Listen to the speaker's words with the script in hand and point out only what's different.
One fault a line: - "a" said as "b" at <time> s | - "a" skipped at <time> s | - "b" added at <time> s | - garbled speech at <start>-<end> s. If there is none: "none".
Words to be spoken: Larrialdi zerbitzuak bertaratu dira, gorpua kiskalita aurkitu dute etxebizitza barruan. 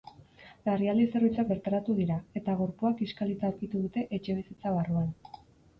- "eta" added at 2.4 s